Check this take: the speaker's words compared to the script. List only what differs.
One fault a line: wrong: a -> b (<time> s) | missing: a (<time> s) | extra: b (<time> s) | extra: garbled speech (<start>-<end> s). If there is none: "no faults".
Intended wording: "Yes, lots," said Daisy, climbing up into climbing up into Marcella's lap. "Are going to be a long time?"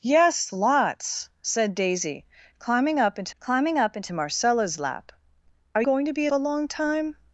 no faults